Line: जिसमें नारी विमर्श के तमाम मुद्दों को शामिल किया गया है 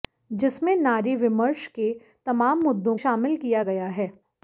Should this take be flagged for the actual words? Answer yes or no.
yes